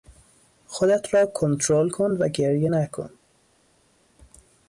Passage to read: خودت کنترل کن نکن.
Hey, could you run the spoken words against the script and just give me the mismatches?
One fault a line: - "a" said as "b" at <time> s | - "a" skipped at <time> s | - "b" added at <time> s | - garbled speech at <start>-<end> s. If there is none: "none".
- "را" added at 1.1 s
- "و گریه" added at 2.1 s